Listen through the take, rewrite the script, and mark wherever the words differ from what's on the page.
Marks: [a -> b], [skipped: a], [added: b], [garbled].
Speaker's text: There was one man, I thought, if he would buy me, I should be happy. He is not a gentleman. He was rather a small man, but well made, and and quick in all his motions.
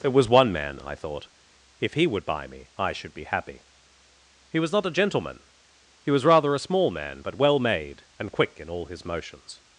There was one man, I thought, if he would buy me, I should be happy. He [is -> was] not a gentleman. He was rather a small man, but well made, and [skipped: and] quick in all his motions.